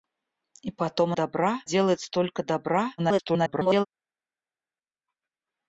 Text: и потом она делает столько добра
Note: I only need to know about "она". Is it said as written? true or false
false